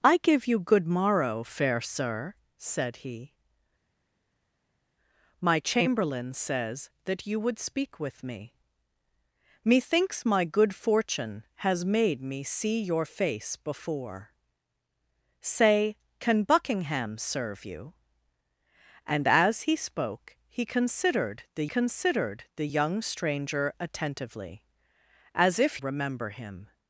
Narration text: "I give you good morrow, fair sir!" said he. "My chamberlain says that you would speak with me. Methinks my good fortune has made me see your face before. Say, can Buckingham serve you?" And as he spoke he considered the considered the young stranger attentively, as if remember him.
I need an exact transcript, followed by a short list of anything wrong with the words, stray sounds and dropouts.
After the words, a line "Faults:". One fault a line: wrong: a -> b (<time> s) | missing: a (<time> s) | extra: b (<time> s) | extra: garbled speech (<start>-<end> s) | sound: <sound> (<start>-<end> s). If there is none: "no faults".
"I give you good morrow, fair sir!" said he. "My chamberlain says that you would speak with me. Methinks my good fortune has made me see your face before. Say, can Buckingham serve you?" And as he spoke he considered the considered the young stranger attentively, as if remember him.
Faults:
no faults